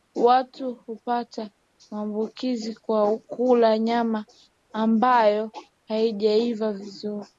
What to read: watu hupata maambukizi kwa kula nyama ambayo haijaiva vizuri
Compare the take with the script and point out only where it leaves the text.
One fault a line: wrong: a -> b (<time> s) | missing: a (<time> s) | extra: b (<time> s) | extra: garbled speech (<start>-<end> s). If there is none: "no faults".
no faults